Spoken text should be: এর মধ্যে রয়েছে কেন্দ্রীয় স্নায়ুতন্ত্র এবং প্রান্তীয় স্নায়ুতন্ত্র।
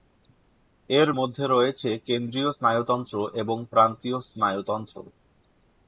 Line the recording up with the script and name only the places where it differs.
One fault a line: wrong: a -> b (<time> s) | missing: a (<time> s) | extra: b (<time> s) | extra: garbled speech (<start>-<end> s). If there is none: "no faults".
no faults